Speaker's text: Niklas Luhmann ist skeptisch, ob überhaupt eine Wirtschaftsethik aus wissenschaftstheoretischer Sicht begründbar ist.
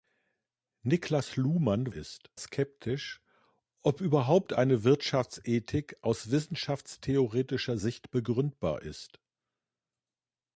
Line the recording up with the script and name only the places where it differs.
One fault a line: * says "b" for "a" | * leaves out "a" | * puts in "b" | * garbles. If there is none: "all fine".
all fine